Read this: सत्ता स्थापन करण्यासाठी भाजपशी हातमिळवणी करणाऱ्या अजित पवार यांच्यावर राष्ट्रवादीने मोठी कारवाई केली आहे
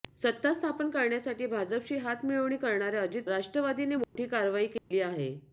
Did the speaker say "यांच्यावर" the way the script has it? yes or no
no